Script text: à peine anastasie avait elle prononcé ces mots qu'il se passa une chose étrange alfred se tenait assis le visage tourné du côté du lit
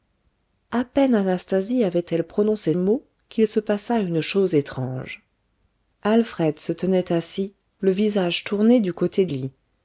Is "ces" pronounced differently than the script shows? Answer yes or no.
yes